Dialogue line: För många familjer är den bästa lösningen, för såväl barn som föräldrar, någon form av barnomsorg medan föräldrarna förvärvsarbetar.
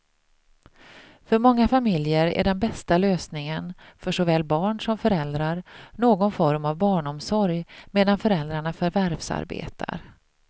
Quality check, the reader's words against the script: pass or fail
pass